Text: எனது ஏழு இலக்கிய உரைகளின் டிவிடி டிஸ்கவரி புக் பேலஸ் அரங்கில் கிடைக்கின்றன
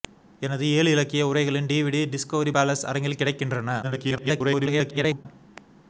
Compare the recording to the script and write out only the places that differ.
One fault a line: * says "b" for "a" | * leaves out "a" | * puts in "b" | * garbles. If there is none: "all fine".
* leaves out "புக்"
* garbles